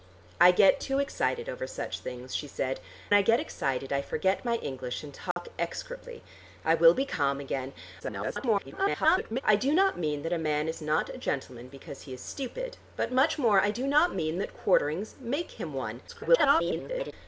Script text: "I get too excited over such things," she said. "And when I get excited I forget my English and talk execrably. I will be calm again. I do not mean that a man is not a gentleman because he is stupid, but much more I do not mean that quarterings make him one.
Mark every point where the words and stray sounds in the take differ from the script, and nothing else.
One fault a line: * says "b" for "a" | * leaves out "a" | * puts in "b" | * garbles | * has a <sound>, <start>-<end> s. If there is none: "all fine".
* leaves out "And when"
* has a dropout, 5.3-5.4 s
* garbles
* garbles